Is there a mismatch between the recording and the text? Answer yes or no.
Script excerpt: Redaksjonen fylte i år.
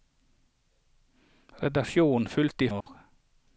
no